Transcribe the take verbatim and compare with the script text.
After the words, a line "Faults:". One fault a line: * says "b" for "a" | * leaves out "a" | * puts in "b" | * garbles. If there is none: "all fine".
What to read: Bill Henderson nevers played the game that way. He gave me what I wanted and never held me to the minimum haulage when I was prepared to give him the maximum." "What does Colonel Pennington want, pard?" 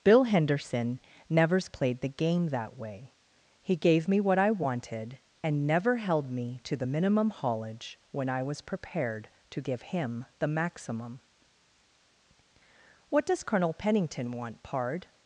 Bill Henderson nevers played the game that way. He gave me what I wanted and never held me to the minimum haulage when I was prepared to give him the maximum." "What does Colonel Pennington want, pard?"
Faults:
all fine